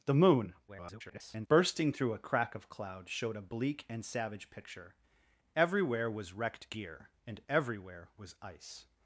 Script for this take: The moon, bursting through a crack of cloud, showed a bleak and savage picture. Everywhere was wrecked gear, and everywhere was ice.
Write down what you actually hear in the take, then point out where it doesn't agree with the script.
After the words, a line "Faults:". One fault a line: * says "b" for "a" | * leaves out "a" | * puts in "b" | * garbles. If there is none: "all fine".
The moon, [garbled] bursting through a crack of cloud, showed a bleak and savage picture. Everywhere was wrecked gear, and everywhere was ice.
Faults:
* garbles